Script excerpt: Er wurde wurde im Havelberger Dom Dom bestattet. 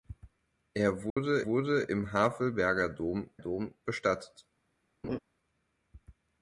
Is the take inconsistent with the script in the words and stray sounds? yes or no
yes